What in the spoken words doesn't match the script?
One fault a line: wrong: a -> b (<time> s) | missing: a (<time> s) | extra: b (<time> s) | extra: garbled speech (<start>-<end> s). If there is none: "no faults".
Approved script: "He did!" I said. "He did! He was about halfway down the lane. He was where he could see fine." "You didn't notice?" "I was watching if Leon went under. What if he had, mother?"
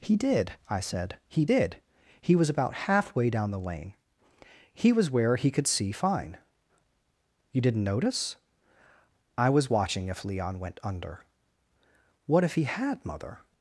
no faults